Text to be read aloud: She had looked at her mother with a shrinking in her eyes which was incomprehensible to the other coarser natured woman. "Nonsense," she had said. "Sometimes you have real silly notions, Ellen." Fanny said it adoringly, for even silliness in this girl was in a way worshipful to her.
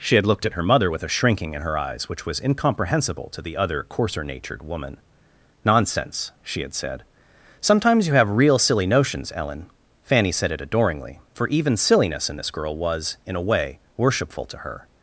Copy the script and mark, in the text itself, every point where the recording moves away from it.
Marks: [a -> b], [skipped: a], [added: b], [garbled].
She had looked at her mother with a shrinking in her eyes which was incomprehensible to the other coarser natured woman. "Nonsense," she had said. "Sometimes you have real silly notions, Ellen." Fanny said it adoringly, for even silliness in this girl was in a way worshipful to her.